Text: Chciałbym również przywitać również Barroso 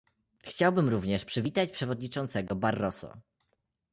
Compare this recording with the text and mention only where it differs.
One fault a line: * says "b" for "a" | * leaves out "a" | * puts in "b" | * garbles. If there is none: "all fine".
* says "przewodniczącego" for "również"